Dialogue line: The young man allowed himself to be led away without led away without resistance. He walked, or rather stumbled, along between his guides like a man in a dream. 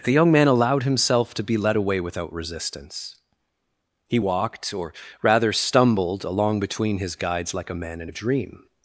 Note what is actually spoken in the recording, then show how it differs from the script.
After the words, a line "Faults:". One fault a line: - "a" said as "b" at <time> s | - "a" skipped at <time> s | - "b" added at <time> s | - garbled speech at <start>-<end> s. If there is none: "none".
The young man allowed himself to be led away without resistance. He walked, or rather stumbled, along between his guides like a man in a dream.
Faults:
- "led away without" skipped at 2.3 s